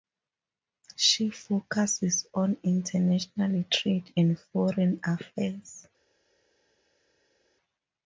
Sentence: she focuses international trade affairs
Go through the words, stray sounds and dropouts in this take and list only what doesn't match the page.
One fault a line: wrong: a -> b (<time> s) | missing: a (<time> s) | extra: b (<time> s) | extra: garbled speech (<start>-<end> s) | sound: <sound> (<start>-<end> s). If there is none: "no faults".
extra: on (2.3 s)
extra: and foreign (4.2 s)